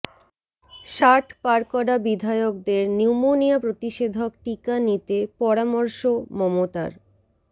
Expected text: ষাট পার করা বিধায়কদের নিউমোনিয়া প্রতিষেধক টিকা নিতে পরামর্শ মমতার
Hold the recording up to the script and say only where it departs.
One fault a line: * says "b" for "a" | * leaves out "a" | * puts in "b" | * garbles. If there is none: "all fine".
all fine